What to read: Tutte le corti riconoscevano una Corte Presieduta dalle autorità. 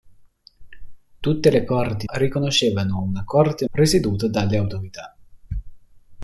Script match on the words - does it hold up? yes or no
yes